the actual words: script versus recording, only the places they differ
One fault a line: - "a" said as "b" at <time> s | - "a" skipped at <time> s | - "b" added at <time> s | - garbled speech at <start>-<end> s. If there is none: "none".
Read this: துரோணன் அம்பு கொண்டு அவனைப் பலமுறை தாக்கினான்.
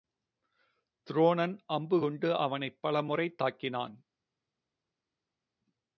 none